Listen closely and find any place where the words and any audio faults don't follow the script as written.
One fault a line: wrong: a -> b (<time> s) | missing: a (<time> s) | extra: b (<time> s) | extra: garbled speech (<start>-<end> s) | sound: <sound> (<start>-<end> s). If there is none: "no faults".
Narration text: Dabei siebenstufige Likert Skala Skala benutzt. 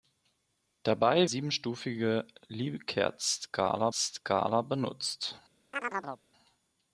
sound: chirp (5.7-6.2 s)